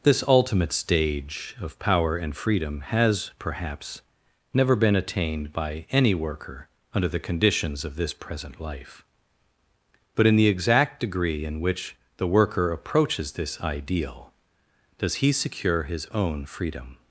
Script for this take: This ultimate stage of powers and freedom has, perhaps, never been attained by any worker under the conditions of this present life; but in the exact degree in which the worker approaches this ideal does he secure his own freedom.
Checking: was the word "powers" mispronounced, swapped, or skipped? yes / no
yes